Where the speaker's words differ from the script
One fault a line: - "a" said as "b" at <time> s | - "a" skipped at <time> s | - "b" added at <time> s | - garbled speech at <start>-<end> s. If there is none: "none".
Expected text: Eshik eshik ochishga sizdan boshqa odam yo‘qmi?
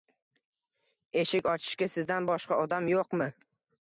- "eshik" skipped at 1.5 s